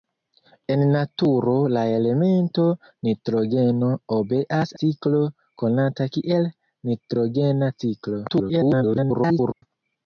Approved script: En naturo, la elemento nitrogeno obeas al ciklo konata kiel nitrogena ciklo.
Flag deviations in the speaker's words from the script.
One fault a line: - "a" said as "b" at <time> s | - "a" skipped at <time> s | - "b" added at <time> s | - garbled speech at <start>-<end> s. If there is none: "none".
- "al" skipped at 4.7 s
- garbled speech at 8.3-9.6 s